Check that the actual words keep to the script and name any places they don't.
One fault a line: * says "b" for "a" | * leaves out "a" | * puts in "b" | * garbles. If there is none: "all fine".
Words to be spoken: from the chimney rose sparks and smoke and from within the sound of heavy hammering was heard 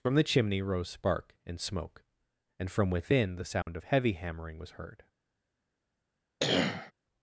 * says "spark" for "sparks"